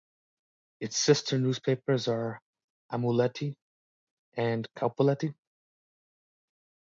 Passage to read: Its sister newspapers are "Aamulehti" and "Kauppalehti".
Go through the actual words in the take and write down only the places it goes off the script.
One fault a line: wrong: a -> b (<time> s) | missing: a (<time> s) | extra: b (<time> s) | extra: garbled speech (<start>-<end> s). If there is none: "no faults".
no faults